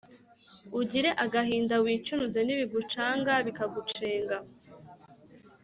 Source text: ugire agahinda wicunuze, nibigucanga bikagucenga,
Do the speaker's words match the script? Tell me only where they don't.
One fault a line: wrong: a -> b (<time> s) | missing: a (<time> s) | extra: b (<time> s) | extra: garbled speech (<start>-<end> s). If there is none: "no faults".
no faults